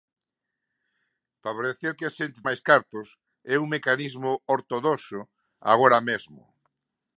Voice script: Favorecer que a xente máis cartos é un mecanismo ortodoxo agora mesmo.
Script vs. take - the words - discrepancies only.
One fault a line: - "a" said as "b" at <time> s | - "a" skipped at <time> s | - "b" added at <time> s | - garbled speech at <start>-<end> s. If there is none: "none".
none